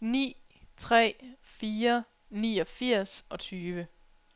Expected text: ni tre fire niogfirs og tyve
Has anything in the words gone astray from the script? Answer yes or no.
no